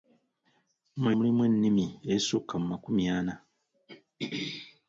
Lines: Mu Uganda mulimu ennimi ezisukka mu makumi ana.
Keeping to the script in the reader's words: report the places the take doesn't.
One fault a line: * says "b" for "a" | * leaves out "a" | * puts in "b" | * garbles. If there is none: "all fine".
* leaves out "Uganda"